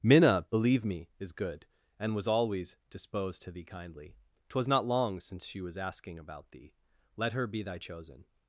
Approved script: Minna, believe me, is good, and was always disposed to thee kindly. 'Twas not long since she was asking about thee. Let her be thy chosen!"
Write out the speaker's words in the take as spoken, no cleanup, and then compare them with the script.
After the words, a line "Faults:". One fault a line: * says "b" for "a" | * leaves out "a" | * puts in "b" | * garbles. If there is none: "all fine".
Minna, believe me, is good, and was always disposed to thee kindly. 'Twas not long since she was asking about thee. Let her be thy chosen!"
Faults:
all fine